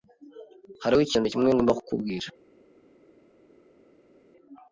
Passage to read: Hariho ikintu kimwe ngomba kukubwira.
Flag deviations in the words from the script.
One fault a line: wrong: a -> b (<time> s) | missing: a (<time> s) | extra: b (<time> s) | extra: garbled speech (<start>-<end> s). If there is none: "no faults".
no faults